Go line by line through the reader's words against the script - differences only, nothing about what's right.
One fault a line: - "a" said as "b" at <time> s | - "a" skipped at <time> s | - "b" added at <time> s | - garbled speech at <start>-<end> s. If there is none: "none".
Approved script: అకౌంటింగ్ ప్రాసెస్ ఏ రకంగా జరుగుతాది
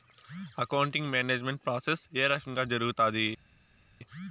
- "మేనేజ్మెంట్" added at 1.1 s